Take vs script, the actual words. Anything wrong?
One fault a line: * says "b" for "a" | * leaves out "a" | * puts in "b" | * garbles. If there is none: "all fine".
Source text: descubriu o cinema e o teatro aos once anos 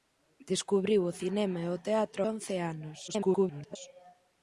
* leaves out "aos"
* garbles